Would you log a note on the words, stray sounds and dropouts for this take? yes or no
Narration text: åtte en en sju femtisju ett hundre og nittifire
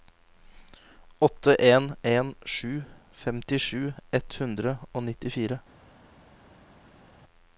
no